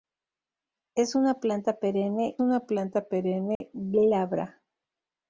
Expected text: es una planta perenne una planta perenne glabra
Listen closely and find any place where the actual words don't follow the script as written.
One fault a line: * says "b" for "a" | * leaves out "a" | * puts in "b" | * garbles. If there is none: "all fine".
all fine